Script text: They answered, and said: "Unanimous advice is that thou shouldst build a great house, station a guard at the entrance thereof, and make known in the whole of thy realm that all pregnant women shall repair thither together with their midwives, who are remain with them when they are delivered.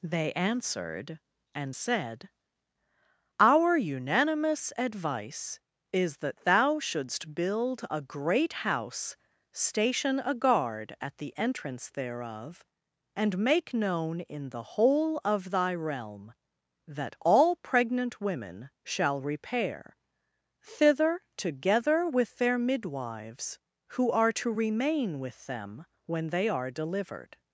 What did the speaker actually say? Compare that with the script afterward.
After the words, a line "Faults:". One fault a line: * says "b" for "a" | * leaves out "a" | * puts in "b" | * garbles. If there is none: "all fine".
They answered, and said: "Our unanimous advice is that thou shouldst build a great house, station a guard at the entrance thereof, and make known in the whole of thy realm that all pregnant women shall repair thither together with their midwives, who are to remain with them when they are delivered.
Faults:
* puts in "Our"
* puts in "to"